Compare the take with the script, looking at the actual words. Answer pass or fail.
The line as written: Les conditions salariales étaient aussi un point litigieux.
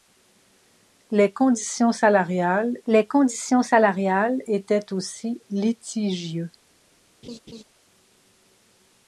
fail